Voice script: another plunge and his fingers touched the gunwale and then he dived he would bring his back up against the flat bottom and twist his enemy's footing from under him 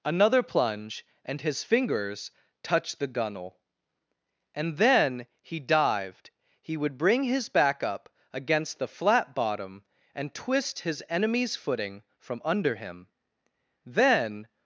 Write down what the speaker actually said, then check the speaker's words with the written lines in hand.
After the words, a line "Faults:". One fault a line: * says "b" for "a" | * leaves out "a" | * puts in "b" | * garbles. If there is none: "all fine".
another plunge and his fingers touched the gunwale and then he dived he would bring his back up against the flat bottom and twist his enemy's footing from under him then
Faults:
* puts in "then"